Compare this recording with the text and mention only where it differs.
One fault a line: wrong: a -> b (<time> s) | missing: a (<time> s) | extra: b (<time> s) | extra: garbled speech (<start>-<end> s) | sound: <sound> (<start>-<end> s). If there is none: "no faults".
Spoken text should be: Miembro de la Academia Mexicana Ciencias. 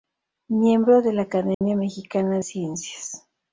sound: dropout (1.5-1.6 s)